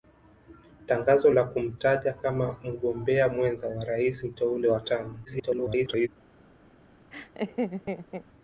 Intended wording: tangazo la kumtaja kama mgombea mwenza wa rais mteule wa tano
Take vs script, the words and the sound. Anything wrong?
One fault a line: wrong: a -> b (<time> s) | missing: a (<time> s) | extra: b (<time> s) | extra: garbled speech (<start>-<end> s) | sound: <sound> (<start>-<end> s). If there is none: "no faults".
extra: garbled speech (5.2-6.1 s)
sound: laugh (7.1-8.2 s)